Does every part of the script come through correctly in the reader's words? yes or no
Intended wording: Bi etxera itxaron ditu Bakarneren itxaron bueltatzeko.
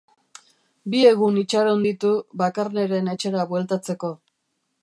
no